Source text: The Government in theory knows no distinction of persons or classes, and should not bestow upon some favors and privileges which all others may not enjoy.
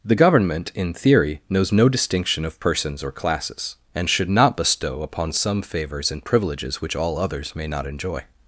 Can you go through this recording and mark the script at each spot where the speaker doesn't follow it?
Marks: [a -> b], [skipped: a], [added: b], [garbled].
The Government in theory knows no distinction of persons or classes, and should not bestow upon some favors and privileges which all others may not enjoy.